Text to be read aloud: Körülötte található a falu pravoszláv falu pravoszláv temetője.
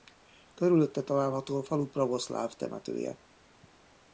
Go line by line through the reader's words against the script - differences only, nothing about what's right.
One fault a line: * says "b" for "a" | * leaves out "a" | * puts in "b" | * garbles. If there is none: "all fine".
* leaves out "falu pravoszláv"